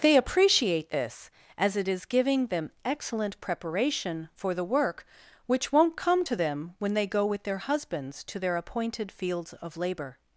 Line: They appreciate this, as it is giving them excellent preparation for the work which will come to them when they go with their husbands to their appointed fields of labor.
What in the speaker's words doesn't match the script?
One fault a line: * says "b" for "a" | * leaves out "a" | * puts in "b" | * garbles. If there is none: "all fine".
* says "won't" for "will"